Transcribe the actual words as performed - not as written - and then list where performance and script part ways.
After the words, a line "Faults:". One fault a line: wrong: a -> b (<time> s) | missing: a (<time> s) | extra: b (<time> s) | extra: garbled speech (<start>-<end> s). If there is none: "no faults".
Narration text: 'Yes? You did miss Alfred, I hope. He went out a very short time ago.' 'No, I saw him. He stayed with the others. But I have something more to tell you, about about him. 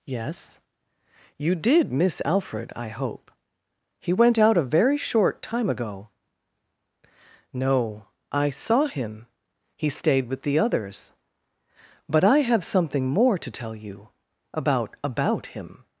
'Yes? You did miss Alfred, I hope. He went out a very short time ago.' 'No, I saw him. He stayed with the others. But I have something more to tell you, about about him.
Faults:
no faults